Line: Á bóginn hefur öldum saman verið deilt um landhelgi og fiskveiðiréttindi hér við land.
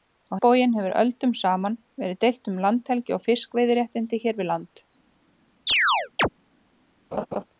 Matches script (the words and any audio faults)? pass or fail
fail